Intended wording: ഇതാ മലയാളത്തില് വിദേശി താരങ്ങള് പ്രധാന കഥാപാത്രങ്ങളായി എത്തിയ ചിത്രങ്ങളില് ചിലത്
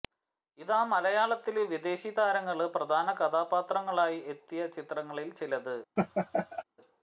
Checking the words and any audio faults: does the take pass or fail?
fail